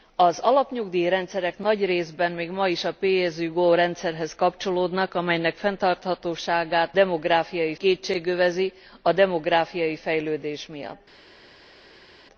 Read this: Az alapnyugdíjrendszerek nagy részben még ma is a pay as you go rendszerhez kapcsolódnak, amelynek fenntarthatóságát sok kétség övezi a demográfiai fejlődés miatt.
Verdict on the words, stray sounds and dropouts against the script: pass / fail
fail